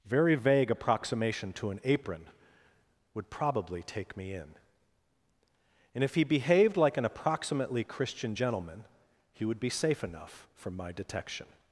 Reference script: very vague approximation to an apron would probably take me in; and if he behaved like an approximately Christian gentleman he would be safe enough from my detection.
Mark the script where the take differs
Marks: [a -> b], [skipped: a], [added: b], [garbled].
very vague approximation to an apron would probably take me in; and if he behaved like an approximately Christian gentleman he would be safe enough from my detection.